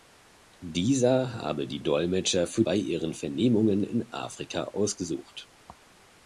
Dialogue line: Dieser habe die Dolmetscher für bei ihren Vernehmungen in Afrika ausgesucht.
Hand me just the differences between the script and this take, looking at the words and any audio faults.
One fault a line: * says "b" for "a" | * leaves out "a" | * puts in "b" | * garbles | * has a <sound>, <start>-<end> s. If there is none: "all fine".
all fine